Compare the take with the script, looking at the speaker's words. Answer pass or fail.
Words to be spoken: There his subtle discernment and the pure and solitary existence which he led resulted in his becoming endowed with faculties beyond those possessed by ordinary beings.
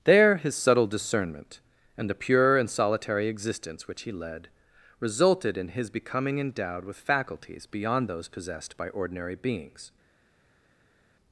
pass